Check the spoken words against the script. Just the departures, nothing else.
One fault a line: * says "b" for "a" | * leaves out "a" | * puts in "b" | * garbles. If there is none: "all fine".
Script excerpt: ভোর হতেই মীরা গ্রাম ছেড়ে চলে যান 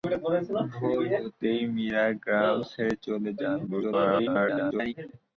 * garbles